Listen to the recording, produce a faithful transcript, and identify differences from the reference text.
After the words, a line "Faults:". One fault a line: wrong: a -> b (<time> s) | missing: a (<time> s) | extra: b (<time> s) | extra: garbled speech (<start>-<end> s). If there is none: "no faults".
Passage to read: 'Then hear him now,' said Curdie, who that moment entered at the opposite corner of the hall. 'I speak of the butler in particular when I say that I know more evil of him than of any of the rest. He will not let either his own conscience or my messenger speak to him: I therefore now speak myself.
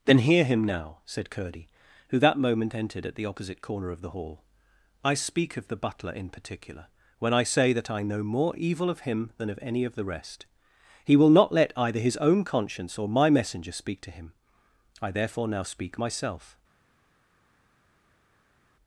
'Then hear him now,' said Curdie, who that moment entered at the opposite corner of the hall. 'I speak of the butler in particular when I say that I know more evil of him than of any of the rest. He will not let either his own conscience or my messenger speak to him: I therefore now speak myself.
Faults:
no faults